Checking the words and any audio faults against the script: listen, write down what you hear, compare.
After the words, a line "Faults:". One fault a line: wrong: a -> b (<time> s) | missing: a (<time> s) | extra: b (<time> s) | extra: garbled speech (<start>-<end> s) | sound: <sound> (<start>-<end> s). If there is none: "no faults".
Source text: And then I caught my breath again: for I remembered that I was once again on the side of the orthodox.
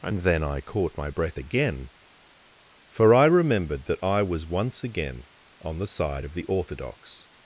And then I caught my breath again: for I remembered that I was once again on the side of the orthodox.
Faults:
no faults